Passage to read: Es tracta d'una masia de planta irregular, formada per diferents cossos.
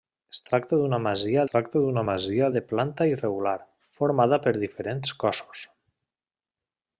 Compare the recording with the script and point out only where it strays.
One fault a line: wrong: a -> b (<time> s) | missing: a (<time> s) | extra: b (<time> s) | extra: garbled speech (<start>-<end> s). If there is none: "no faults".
extra: tracta d'una masia (1.5 s)